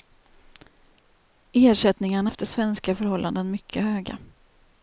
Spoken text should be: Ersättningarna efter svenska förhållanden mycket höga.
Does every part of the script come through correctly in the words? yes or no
yes